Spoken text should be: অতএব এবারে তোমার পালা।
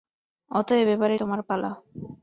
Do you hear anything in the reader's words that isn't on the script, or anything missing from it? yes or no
no